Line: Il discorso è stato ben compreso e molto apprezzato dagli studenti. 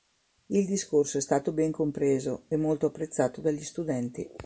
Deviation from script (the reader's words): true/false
false